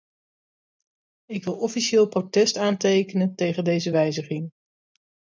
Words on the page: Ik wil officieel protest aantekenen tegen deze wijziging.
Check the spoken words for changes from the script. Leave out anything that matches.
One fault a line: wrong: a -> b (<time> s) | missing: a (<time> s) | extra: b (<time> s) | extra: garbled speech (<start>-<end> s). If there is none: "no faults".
no faults